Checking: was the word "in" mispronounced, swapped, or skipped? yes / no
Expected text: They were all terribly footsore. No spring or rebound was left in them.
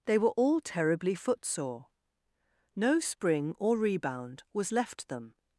yes